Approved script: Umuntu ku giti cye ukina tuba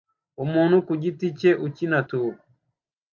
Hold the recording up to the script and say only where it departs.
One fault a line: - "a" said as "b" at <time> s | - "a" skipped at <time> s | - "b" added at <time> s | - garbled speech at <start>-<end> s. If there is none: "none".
none